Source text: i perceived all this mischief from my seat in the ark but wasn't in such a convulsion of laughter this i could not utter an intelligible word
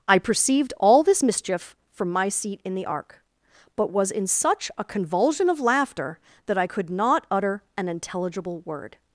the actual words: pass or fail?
fail